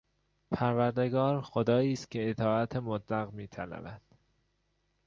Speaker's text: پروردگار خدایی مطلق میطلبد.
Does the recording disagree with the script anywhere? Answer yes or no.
yes